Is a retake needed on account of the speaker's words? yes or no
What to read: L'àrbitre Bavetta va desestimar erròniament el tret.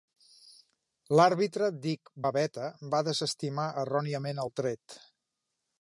yes